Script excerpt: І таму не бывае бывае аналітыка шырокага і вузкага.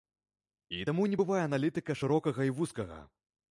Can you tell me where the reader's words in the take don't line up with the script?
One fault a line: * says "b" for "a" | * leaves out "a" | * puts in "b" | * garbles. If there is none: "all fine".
* leaves out "бывае"